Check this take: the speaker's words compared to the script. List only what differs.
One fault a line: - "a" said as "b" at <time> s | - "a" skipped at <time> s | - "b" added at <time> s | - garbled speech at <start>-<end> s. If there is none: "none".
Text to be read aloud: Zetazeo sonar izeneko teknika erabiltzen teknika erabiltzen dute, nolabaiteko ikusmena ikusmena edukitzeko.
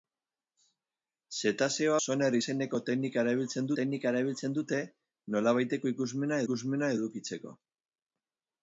none